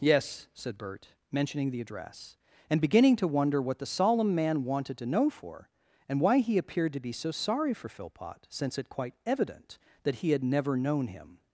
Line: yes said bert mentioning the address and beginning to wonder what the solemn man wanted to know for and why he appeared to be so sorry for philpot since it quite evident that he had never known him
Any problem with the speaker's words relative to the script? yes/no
no